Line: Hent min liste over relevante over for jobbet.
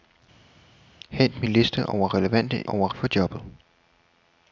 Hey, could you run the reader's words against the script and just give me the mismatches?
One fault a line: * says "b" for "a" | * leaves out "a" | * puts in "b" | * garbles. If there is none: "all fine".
all fine